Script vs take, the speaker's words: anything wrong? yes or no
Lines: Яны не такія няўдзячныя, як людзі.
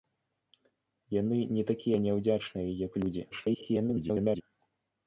yes